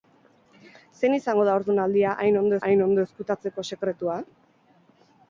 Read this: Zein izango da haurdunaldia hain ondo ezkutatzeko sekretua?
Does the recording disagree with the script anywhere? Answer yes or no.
yes